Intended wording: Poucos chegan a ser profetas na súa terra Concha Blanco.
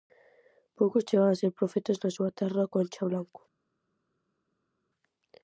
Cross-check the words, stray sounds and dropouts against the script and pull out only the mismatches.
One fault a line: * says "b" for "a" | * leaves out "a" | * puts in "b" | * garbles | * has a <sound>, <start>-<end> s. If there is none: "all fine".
all fine